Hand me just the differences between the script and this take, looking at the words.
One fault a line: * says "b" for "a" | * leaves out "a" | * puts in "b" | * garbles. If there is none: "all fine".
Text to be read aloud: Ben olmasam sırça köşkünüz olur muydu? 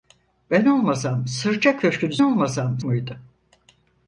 * says "olmasam" for "olur"